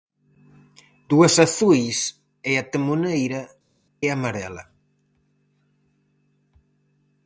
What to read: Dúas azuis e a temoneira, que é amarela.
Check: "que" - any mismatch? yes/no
yes